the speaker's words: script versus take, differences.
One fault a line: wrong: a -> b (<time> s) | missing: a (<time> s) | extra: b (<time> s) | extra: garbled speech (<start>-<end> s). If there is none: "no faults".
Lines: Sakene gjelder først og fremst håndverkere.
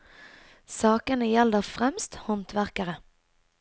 missing: først (1.7 s)